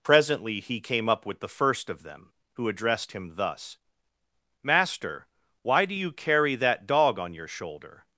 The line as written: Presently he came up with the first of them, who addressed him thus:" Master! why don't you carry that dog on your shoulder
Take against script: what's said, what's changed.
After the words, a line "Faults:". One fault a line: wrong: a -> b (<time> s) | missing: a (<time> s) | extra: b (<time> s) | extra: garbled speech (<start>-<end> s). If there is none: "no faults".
Presently he came up with the first of them, who addressed him thus:" Master! why do you carry that dog on your shoulder
Faults:
wrong: don't -> do (5.8 s)